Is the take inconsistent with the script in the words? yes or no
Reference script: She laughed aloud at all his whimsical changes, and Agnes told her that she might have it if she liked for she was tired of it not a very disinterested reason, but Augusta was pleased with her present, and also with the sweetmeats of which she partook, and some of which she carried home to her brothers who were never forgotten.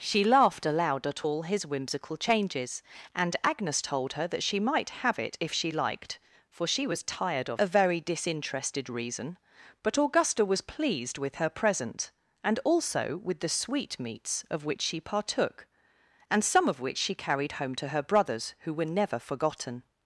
yes